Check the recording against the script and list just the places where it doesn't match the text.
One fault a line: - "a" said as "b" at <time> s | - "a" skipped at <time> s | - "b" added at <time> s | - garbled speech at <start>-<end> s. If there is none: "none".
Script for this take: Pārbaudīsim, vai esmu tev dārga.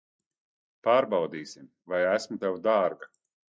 none